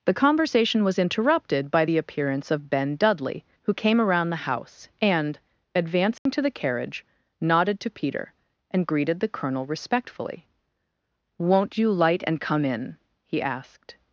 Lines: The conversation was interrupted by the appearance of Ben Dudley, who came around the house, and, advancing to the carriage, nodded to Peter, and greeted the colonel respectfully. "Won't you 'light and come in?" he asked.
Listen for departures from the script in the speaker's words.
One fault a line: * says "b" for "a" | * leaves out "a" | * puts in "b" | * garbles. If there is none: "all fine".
all fine